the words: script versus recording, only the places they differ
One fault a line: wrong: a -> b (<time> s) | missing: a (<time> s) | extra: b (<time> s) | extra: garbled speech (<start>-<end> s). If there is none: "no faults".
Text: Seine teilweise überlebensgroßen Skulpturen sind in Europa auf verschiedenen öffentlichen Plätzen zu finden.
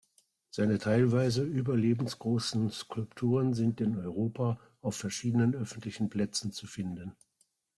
no faults